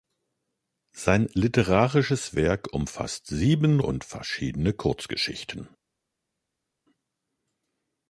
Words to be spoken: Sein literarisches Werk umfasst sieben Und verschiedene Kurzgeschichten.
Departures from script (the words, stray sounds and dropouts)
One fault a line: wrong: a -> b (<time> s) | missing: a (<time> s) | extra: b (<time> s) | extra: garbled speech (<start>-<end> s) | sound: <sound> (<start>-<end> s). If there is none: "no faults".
no faults